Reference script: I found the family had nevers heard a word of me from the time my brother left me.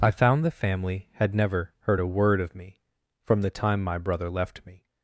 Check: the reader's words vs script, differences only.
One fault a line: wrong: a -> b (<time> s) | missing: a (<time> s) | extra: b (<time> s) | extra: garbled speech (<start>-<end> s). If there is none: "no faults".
wrong: nevers -> never (1.4 s)